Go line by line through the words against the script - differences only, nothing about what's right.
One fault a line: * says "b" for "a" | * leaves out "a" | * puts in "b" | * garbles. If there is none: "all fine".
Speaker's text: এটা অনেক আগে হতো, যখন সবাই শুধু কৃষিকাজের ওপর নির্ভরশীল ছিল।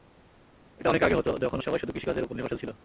all fine